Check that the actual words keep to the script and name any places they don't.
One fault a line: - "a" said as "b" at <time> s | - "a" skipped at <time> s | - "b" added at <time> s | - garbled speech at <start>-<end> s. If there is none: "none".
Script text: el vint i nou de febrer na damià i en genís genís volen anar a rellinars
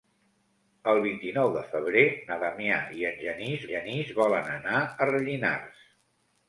none